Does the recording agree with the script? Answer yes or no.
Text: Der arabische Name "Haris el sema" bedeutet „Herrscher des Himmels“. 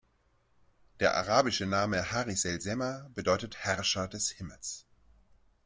yes